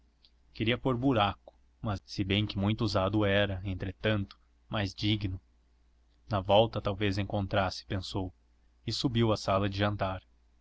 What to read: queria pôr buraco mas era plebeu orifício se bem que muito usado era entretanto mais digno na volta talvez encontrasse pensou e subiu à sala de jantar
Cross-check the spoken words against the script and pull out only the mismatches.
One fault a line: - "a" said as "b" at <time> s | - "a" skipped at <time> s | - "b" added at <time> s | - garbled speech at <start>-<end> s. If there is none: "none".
- "era plebeu orifício" skipped at 2.0 s